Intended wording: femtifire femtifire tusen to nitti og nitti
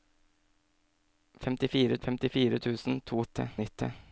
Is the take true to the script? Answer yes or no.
yes